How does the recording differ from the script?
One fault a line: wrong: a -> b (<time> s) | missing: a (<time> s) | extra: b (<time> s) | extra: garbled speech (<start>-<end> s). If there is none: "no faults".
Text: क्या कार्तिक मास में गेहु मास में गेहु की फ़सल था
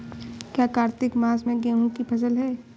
missing: मास में गेहु (1.9 s)
wrong: था -> है (2.4 s)